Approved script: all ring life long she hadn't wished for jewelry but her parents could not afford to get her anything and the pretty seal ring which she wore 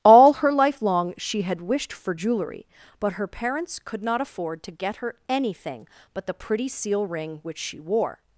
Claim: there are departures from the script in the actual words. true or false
true